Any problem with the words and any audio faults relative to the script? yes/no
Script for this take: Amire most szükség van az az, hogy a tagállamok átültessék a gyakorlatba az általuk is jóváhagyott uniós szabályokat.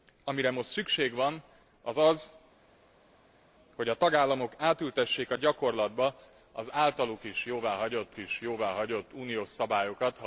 yes